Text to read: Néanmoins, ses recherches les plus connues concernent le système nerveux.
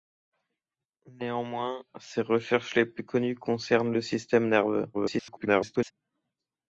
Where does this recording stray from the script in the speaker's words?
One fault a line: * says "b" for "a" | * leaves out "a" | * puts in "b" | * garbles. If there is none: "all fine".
* garbles